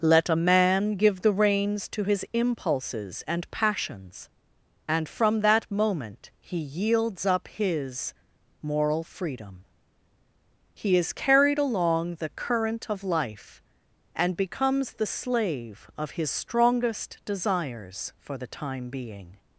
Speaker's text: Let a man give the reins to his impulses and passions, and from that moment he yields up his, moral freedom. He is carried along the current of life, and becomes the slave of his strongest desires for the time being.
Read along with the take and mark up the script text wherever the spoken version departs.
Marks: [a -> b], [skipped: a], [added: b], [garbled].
Let a man give the reins to his impulses and passions, and from that moment he yields up his, moral freedom. He is carried along the current of life, and becomes the slave of his strongest desires for the time being.